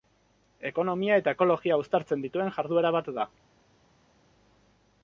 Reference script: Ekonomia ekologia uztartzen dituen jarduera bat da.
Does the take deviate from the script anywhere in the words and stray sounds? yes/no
yes